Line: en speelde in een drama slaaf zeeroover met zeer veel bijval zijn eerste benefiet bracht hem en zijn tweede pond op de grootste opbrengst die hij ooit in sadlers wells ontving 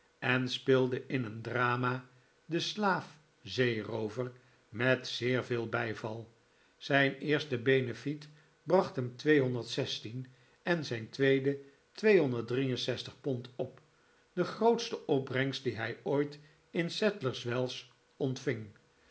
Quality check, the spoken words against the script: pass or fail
fail